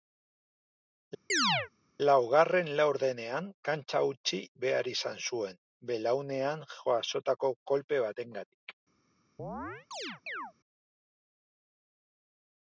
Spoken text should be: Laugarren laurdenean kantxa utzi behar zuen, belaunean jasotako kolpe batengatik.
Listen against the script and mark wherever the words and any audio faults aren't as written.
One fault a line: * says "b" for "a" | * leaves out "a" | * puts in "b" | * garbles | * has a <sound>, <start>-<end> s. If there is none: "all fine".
* has a chirp, 1.3-1.7 s
* puts in "izan"
* has a chirp, 9.4-10.5 s